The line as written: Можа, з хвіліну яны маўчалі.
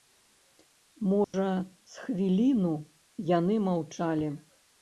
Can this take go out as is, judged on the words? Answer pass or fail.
pass